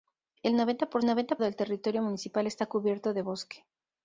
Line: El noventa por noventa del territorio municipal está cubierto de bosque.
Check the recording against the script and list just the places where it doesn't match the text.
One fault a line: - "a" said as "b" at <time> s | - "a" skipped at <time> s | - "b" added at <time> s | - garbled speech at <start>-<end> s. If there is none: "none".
none